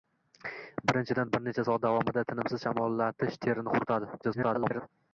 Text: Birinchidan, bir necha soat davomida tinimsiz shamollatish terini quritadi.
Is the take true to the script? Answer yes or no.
no